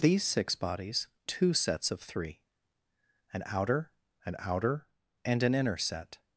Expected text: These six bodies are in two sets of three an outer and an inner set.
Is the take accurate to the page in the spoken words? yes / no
no